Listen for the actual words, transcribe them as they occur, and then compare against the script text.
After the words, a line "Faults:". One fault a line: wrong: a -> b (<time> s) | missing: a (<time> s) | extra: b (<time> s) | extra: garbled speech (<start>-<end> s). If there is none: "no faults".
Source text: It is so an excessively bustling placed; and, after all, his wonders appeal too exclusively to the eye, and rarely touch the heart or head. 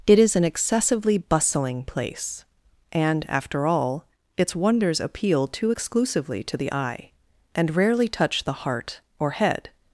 It is an excessively bustling place; and, after all, its wonders appeal too exclusively to the eye, and rarely touch the heart or head.
Faults:
missing: so (0.3 s)
wrong: placed -> place (1.8 s)
wrong: his -> its (4.4 s)